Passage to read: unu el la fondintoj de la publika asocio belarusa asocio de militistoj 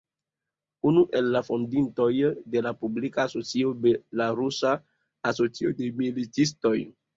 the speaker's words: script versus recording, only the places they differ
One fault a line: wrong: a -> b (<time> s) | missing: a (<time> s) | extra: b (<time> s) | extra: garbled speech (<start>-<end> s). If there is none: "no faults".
no faults